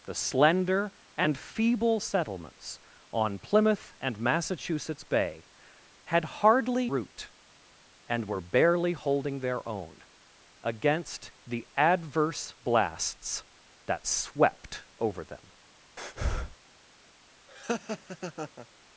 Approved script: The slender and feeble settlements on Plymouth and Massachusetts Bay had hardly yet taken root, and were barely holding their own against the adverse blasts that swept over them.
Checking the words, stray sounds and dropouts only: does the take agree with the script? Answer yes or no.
no